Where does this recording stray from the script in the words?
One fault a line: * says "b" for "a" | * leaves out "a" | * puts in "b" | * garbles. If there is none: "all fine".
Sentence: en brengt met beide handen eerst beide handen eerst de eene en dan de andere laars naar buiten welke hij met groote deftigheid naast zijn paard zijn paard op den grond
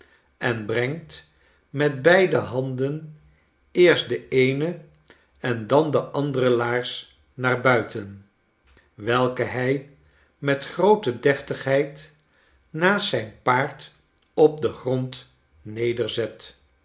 * leaves out "beide handen eerst"
* leaves out "zijn paard"